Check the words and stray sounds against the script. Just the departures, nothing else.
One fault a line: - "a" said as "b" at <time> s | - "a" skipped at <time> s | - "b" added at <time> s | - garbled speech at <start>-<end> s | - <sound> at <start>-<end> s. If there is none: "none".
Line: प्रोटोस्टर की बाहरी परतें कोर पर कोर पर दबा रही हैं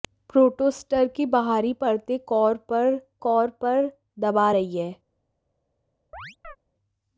- chirp at 6.1-6.6 s